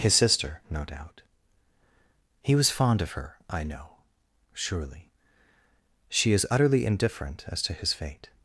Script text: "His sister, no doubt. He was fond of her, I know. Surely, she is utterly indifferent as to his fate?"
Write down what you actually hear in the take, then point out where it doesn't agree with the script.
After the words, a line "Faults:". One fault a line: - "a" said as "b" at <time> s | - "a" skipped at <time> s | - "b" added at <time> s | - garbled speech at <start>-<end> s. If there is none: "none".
"His sister, no doubt. He was fond of her, I know. Surely, she is utterly indifferent as to his fate?"
Faults:
none